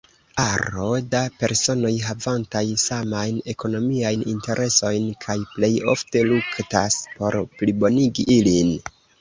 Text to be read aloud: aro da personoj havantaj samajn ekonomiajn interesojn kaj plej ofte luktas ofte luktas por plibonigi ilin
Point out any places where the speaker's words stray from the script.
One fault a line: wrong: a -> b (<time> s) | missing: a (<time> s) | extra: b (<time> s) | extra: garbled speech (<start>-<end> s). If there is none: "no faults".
missing: ofte luktas (7.0 s)